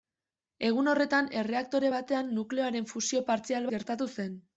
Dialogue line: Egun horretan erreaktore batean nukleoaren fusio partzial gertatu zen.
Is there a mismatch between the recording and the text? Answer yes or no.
no